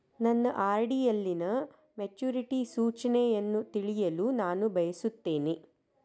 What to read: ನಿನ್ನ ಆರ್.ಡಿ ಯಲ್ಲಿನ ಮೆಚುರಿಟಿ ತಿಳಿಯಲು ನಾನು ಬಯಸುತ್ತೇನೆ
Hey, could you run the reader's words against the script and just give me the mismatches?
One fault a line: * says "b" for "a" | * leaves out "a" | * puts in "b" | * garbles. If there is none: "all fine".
* says "ನನ್ನ" for "ನಿನ್ನ"
* puts in "ಸೂಚನೆಯನ್ನು"